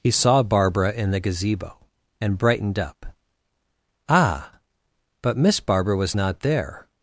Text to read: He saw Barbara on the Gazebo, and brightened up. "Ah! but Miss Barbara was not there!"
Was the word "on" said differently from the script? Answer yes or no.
yes